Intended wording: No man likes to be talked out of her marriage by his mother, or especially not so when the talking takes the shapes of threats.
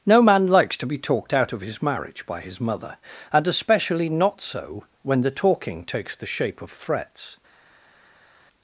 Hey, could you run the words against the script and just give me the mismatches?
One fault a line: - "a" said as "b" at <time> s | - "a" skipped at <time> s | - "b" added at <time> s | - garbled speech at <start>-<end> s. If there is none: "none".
- "her" said as "his" at 1.6 s
- "or" said as "and" at 3.3 s
- "shapes" said as "shape" at 6.2 s